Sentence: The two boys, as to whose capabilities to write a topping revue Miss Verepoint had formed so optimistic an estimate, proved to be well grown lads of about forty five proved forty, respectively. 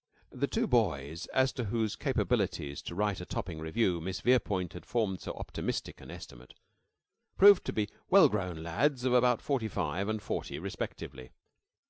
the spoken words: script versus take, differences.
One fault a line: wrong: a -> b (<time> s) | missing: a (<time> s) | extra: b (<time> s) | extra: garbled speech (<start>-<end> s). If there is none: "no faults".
wrong: proved -> and (10.1 s)